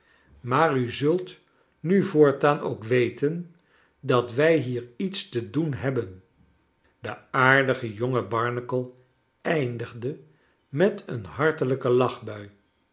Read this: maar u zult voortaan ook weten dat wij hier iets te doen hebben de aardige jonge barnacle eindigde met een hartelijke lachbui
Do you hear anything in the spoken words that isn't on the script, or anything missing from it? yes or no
yes